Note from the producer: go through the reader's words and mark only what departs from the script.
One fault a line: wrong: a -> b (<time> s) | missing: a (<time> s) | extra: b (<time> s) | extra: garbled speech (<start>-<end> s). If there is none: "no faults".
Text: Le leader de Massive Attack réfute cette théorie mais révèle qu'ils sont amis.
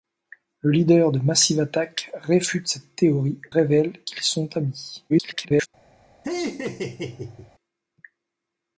missing: mais (3.4 s)
extra: garbled speech (5.1-5.7 s)